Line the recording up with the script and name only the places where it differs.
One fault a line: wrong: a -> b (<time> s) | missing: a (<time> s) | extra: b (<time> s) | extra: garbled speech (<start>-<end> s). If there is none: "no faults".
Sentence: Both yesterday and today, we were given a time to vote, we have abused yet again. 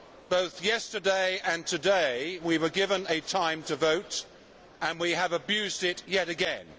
extra: and (4.8 s)
extra: it (5.8 s)